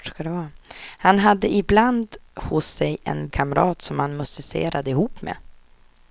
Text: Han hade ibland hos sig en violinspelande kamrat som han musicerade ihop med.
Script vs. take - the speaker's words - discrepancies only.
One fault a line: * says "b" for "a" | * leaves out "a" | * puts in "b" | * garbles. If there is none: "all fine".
* leaves out "violinspelande"